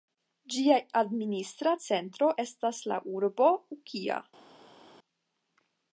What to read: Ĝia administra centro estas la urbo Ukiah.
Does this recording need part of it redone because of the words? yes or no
no